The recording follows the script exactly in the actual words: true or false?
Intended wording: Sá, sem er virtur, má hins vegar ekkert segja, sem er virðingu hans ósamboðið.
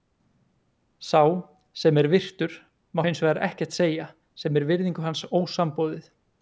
true